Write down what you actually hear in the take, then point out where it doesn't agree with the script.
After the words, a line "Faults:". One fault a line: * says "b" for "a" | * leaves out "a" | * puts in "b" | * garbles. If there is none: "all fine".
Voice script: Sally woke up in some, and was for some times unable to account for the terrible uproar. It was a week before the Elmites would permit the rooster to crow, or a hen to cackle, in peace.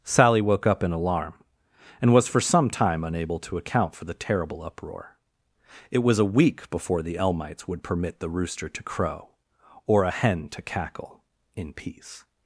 Sally woke up in alarm, and was for some time unable to account for the terrible uproar. It was a week before the Elmites would permit the rooster to crow, or a hen to cackle, in peace.
Faults:
* says "alarm" for "some"
* says "time" for "times"